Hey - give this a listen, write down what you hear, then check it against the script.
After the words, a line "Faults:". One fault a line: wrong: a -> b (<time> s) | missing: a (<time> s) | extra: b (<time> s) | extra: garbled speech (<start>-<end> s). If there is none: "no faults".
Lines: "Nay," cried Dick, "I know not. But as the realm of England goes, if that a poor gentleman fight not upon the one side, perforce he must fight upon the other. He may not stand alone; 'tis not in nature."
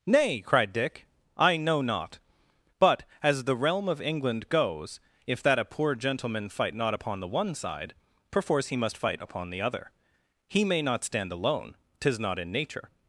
"Nay," cried Dick, "I know not. But as the realm of England goes, if that a poor gentleman fight not upon the one side, perforce he must fight upon the other. He may not stand alone; 'tis not in nature."
Faults:
no faults